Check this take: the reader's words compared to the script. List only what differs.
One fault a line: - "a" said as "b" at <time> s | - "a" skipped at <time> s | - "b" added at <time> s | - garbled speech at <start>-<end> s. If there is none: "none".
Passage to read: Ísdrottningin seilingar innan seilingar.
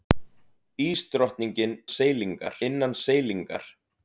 none